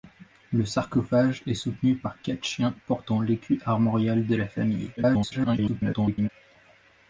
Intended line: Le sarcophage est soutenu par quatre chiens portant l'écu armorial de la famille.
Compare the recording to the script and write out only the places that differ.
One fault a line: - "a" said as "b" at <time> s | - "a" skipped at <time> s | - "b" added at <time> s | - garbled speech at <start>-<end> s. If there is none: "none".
- garbled speech at 5.0-6.3 s